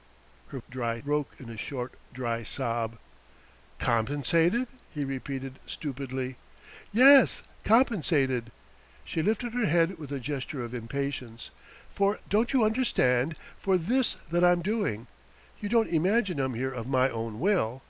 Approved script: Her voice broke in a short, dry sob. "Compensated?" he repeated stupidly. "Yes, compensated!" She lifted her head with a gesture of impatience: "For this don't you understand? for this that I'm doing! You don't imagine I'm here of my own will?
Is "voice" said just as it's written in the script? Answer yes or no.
no